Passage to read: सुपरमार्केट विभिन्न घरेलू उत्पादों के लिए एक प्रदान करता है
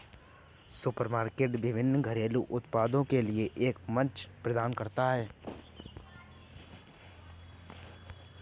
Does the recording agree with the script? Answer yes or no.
no